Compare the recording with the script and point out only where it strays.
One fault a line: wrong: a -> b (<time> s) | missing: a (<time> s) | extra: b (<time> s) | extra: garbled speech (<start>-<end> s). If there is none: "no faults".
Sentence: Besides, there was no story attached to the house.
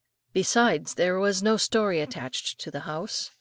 no faults